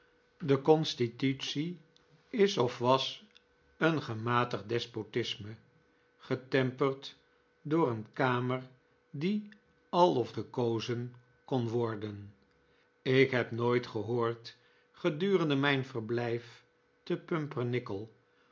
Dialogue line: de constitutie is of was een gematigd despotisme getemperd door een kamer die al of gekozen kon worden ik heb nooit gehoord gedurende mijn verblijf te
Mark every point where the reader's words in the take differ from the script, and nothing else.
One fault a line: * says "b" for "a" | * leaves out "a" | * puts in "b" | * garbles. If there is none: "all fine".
all fine